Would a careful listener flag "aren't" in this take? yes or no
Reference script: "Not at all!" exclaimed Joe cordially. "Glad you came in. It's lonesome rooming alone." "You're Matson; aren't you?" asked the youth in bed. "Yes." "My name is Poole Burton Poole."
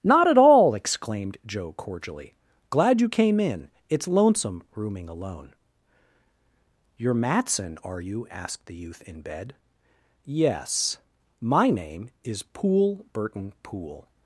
yes